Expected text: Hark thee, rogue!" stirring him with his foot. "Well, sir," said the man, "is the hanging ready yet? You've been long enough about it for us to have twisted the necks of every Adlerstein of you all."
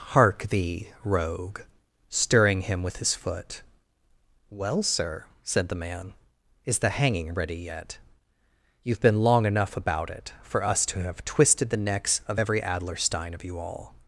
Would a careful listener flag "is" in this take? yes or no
no